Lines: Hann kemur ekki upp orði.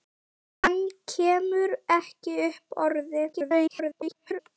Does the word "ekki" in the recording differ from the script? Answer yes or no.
no